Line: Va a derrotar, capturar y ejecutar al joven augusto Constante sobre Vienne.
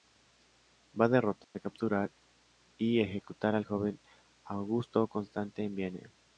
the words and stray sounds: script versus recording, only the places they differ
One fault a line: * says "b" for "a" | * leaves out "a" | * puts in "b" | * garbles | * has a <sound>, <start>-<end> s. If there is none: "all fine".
* has a dropout, 1.4-1.5 s
* says "en" for "sobre"